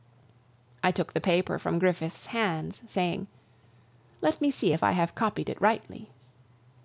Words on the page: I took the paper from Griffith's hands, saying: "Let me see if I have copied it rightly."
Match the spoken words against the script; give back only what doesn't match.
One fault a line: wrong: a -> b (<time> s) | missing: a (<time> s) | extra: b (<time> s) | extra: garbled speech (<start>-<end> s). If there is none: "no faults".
no faults